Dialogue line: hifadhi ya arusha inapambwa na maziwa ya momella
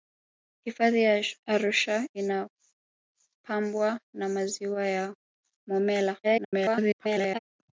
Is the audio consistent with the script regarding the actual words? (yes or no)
no